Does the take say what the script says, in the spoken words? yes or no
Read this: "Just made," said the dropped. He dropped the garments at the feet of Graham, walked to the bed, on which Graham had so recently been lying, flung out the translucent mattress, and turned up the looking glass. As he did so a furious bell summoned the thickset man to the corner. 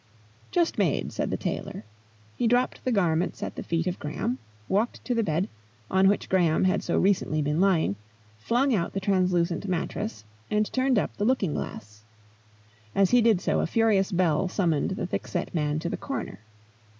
no